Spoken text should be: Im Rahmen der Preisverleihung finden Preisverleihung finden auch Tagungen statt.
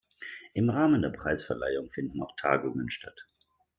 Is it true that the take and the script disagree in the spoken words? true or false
true